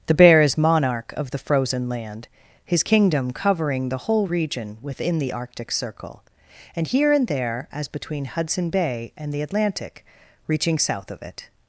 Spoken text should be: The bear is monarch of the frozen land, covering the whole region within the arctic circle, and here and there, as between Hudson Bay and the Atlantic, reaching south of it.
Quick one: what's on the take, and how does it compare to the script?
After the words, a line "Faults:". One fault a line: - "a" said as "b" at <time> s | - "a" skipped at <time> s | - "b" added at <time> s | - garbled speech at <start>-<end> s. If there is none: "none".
The bear is monarch of the frozen land, his kingdom covering the whole region within the arctic circle, and here and there, as between Hudson Bay and the Atlantic, reaching south of it.
Faults:
- "his kingdom" added at 2.6 s